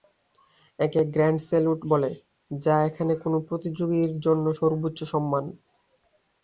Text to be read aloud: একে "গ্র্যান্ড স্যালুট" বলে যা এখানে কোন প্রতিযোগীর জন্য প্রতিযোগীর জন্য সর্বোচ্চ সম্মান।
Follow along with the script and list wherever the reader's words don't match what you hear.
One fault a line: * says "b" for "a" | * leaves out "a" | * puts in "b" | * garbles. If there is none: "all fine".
* leaves out "প্রতিযোগীর জন্য"